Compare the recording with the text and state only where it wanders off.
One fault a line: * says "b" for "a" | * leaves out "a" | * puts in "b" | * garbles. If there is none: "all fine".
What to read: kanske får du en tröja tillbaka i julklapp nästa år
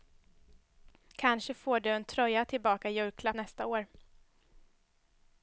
all fine